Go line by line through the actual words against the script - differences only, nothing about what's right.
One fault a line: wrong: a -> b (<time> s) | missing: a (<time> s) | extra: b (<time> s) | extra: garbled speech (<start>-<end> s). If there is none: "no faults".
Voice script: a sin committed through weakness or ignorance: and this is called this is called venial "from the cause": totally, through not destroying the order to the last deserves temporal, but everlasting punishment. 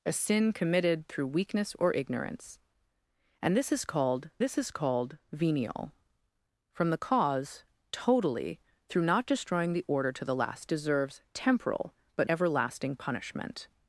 no faults